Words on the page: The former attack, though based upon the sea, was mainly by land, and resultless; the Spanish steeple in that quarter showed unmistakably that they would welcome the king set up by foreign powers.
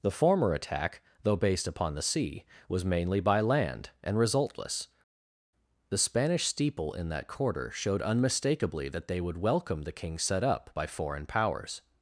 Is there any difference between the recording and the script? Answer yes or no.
no